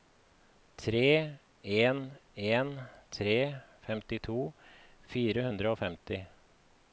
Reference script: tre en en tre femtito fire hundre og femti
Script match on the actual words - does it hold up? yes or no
yes